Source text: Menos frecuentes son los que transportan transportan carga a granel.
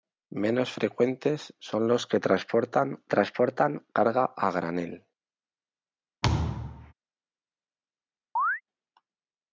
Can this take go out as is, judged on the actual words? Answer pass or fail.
pass